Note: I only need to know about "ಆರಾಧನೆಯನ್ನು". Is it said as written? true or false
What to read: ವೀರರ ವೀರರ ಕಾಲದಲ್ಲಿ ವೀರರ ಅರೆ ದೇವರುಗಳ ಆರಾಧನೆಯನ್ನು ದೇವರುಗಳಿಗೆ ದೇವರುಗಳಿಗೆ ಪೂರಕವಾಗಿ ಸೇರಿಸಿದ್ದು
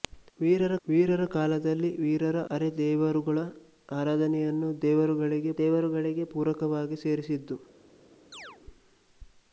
true